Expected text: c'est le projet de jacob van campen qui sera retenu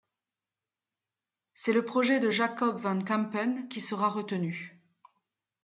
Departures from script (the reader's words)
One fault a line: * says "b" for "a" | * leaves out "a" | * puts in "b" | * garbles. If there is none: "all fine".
all fine